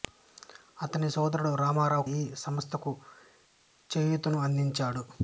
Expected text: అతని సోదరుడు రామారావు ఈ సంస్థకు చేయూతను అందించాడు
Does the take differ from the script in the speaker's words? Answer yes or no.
no